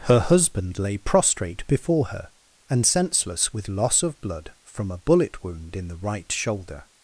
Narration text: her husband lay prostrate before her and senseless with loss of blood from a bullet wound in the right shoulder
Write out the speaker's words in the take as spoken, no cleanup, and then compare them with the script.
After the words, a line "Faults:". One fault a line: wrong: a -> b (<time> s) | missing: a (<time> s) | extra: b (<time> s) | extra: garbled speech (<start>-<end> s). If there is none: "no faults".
her husband lay prostrate before her and senseless with loss of blood from a bullet wound in the right shoulder
Faults:
no faults